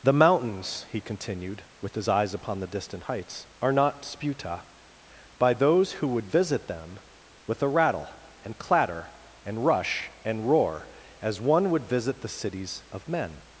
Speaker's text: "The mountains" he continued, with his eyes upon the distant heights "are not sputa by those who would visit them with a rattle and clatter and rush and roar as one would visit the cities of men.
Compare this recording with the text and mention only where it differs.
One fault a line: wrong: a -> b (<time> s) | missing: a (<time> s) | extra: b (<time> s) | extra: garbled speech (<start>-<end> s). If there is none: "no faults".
no faults